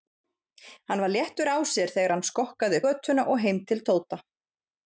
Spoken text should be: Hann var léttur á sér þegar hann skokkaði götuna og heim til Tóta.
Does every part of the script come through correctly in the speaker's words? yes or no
yes